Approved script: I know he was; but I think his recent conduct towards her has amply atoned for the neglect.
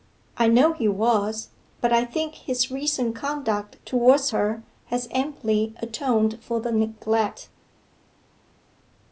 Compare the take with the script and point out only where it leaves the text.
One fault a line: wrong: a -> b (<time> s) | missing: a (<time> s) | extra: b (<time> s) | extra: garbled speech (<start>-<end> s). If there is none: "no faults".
no faults